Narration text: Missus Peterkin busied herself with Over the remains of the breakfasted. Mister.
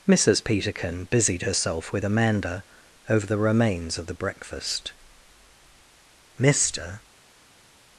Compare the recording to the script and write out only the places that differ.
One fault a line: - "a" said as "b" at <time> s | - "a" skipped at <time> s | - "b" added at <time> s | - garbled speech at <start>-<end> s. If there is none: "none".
- "Amanda" added at 2.0 s
- "breakfasted" said as "breakfast" at 4.1 s